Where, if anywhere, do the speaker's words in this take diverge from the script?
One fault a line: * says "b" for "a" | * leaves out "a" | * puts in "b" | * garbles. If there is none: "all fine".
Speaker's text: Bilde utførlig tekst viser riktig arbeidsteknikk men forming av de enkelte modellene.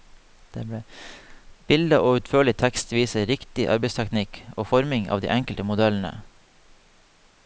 * puts in "og"
* says "og" for "men"